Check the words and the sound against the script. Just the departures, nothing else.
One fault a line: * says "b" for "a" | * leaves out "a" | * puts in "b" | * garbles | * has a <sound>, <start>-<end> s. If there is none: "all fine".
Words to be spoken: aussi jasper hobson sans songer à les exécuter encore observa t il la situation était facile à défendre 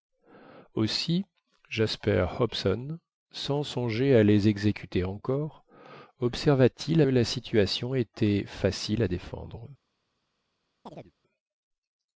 * has a chirp, 10.9-11.1 s